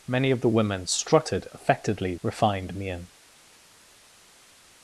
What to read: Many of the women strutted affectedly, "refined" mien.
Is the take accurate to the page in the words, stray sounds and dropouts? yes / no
yes